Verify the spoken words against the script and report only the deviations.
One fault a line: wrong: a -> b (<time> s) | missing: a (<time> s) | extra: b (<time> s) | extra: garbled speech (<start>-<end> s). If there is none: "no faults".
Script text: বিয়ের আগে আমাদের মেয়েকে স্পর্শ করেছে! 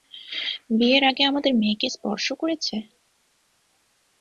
no faults